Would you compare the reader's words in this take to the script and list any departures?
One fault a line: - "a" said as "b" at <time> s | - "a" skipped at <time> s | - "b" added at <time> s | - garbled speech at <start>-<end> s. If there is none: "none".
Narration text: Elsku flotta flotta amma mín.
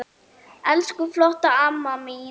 - "flotta" skipped at 1.5 s